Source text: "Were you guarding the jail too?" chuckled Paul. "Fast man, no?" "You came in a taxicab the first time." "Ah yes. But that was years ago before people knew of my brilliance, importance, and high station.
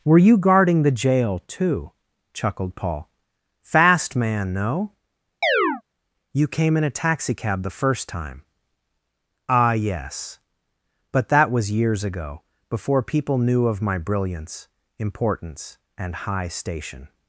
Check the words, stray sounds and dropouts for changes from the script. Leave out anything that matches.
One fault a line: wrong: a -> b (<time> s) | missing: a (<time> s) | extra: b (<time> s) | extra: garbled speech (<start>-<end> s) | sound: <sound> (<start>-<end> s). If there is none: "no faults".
sound: chirp (5.4-5.8 s)